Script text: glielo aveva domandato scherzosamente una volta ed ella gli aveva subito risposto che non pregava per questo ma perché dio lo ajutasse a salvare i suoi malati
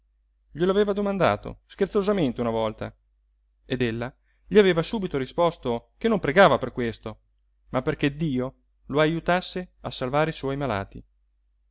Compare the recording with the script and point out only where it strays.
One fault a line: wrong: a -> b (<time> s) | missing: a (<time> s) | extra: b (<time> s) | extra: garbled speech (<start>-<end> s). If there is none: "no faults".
no faults